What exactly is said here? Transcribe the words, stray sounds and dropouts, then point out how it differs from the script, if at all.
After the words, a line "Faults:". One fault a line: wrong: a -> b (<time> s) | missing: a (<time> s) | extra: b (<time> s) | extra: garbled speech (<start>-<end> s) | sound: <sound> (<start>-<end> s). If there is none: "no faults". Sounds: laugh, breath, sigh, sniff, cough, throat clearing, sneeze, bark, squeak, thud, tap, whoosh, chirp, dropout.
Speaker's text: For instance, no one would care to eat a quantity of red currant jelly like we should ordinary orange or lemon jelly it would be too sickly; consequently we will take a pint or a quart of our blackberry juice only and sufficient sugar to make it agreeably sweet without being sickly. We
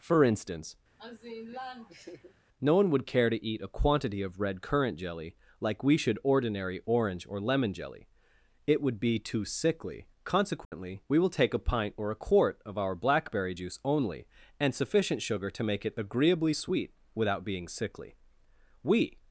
For instance, no one would care to eat a quantity of red currant jelly like we should ordinary orange or lemon jelly it would be too sickly; consequently we will take a pint or a quart of our blackberry juice only and sufficient sugar to make it agreeably sweet without being sickly. We
Faults:
sound: laugh (1.0-2.3 s)
sound: dropout (10.6-10.7 s)